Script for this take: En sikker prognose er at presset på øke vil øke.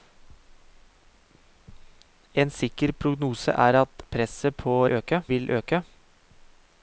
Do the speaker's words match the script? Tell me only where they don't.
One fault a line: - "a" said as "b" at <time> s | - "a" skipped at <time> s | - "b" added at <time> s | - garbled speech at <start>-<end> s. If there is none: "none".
none